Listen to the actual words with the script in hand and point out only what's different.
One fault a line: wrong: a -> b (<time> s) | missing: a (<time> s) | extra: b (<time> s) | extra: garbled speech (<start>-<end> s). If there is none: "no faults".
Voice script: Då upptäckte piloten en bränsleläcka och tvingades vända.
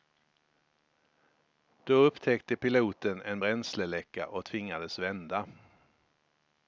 no faults